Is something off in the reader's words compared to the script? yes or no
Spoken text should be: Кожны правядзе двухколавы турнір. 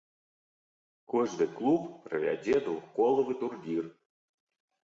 yes